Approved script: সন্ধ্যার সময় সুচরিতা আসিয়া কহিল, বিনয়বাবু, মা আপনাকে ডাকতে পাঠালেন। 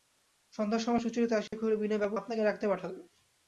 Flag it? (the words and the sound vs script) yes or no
yes